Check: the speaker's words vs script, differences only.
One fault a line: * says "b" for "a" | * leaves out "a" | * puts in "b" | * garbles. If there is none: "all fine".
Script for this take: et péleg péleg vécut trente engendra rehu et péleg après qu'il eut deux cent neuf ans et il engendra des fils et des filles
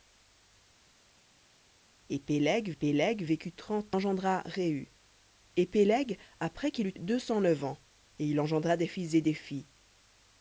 all fine